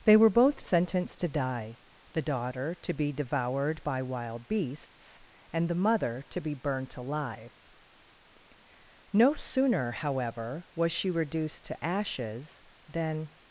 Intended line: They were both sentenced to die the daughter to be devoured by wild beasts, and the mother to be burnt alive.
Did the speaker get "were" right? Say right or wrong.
right